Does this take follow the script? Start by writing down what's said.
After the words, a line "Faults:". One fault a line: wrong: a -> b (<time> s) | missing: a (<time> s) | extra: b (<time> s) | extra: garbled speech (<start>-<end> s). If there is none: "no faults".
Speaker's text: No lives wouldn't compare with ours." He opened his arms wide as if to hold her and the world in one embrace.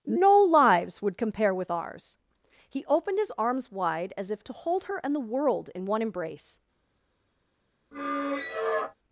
No lives would compare with ours." He opened his arms wide as if to hold her and the world in one embrace.
Faults:
wrong: wouldn't -> would (1.0 s)